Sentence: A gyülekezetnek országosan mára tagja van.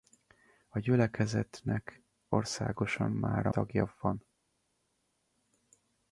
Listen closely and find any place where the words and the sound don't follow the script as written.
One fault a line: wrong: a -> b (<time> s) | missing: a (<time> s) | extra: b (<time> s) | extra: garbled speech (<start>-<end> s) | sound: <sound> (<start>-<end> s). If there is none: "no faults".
no faults